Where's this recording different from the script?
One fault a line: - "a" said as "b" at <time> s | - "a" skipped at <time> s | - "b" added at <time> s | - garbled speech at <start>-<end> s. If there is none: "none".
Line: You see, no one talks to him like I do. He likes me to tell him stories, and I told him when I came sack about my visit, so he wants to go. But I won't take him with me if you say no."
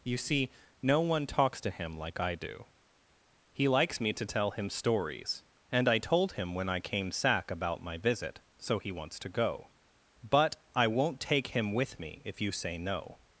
none